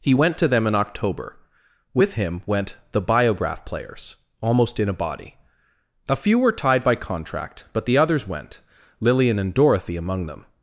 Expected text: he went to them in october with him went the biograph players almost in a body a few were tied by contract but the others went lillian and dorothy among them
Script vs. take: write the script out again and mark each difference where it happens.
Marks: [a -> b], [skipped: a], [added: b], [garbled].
he went to them in october with him went the biograph players almost in a body a few were tied by contract but the others went lillian and dorothy among them